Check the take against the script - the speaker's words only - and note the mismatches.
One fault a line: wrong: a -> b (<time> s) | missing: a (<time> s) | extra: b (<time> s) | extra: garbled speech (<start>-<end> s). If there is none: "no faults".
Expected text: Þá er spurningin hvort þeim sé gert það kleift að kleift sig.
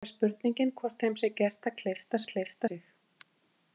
no faults